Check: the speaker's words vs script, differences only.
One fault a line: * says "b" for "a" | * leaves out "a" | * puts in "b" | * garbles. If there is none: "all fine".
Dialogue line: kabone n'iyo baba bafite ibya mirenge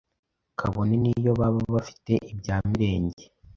all fine